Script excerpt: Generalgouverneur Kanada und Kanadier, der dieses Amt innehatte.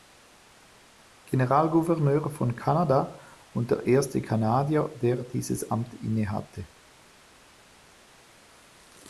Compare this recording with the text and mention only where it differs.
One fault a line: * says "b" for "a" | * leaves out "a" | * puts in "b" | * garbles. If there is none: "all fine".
* puts in "von"
* puts in "der erste"